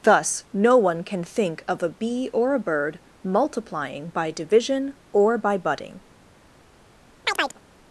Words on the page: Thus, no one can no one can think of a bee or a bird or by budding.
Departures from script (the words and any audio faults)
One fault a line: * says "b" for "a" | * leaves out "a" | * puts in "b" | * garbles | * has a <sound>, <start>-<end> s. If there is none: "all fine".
* leaves out "no one can"
* puts in "multiplying by division"
* has a chirp, 7.2-7.6 s